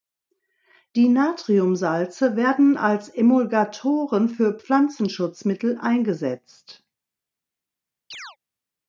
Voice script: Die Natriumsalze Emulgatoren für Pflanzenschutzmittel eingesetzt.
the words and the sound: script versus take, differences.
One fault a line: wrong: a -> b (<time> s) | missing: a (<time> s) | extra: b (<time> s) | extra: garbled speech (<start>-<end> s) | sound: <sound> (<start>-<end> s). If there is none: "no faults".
extra: werden als (2.4 s)
sound: chirp (8.1-8.4 s)